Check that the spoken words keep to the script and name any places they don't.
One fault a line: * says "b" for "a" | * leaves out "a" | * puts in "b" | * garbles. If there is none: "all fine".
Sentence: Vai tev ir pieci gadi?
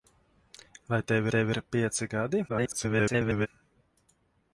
* puts in "tev"
* garbles